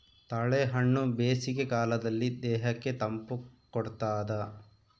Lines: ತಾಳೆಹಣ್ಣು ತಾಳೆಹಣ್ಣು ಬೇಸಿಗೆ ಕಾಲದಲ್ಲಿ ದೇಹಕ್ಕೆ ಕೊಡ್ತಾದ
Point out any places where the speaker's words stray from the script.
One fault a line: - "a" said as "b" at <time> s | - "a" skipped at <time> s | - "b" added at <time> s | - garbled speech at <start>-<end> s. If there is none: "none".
- "ತಾಳೆಹಣ್ಣು" skipped at 1.0 s
- "ತಂಪು" added at 3.0 s